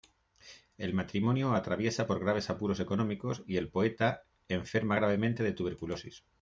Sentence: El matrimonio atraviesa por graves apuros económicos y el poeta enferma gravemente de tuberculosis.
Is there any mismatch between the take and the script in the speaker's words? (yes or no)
no